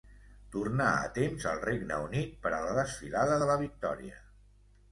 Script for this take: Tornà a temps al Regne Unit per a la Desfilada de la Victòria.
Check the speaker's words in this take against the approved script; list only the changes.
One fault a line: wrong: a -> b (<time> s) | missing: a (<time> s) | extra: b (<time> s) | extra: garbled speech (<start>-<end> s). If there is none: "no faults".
no faults